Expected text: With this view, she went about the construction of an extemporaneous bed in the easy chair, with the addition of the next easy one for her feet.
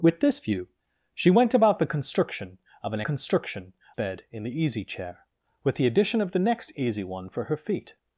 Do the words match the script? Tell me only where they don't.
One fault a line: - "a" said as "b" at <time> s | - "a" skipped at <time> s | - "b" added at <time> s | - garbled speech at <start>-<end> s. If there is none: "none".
- "extemporaneous" said as "construction" at 3.0 s